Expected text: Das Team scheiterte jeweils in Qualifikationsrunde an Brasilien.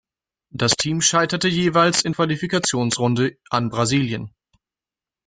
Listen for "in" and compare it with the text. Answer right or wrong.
right